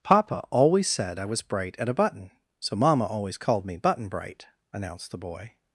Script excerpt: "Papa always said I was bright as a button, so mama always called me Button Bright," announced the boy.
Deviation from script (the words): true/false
true